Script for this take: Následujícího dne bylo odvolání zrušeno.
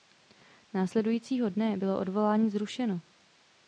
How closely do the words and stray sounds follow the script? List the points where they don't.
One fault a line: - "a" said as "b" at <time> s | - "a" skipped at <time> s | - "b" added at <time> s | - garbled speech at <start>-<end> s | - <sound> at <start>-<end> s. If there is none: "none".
none